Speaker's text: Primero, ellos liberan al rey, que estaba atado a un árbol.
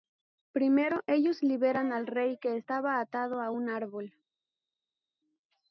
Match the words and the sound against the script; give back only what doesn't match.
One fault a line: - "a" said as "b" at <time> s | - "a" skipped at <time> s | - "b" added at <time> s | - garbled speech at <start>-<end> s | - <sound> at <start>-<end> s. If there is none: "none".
none